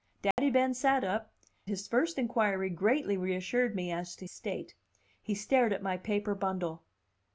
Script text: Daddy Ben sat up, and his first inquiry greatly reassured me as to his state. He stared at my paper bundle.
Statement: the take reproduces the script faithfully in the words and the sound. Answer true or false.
false